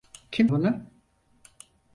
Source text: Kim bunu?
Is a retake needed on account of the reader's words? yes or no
no